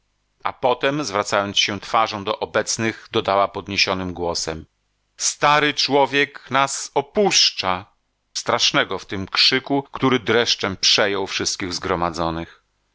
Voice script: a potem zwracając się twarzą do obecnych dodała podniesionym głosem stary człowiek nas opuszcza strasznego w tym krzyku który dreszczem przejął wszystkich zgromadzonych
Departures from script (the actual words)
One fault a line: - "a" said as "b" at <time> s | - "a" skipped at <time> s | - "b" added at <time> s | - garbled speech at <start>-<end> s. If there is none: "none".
none